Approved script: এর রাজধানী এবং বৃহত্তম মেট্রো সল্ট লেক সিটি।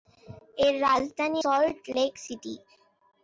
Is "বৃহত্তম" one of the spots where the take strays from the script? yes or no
yes